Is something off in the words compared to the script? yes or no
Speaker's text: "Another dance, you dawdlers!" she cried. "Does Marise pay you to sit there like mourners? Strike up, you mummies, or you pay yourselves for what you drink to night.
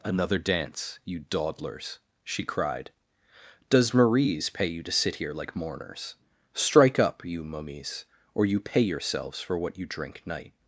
yes